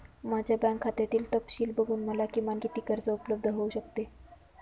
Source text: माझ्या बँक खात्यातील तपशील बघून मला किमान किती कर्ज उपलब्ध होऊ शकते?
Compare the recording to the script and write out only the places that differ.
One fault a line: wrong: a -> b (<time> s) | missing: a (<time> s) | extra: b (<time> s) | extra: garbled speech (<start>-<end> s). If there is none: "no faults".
no faults